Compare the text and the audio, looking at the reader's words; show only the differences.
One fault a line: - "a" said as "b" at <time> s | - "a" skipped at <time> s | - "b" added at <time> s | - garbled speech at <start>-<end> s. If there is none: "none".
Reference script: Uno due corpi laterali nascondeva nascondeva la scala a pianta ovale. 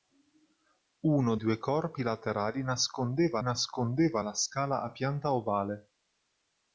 none